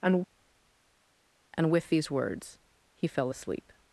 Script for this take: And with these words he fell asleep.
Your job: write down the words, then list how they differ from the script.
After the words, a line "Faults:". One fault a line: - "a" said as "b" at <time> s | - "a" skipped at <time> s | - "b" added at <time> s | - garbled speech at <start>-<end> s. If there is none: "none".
And and with these words he fell asleep.
Faults:
- "and" added at 1.6 s